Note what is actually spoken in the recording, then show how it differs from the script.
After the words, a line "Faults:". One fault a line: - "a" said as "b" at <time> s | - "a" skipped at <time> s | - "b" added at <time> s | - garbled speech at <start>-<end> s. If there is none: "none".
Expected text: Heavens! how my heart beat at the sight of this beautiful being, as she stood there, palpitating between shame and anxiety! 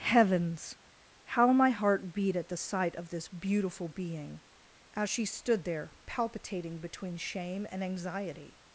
Heavens! how my heart beat at the sight of this beautiful being, as she stood there, palpitating between shame and anxiety!
Faults:
none